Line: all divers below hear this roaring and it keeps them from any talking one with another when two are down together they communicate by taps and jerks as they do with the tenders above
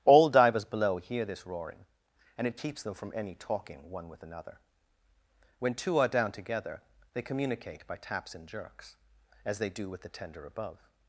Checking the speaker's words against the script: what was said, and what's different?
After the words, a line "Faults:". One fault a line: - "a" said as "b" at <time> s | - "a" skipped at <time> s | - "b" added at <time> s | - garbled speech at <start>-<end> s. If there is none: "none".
all divers below hear this roaring and it keeps them from any talking one with another when two are down together they communicate by taps and jerks as they do with the tender above
Faults:
- "tenders" said as "tender" at 10.1 s